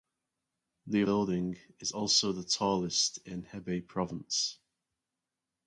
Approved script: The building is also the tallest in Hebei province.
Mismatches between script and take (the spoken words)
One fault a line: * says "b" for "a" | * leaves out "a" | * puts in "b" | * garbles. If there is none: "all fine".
all fine